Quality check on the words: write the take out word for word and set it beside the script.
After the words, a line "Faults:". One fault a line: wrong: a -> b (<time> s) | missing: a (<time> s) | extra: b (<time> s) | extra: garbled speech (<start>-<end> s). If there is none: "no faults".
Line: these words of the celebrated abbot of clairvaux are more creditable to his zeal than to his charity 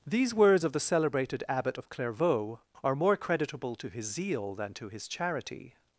these words of the celebrated abbot of clairvaux are more creditable to his zeal than to his charity
Faults:
no faults